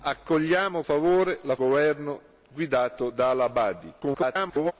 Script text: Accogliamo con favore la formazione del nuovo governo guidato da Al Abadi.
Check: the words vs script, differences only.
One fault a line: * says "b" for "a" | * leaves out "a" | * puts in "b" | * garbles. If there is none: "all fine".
* leaves out "con"
* leaves out "formazione del nuovo"
* garbles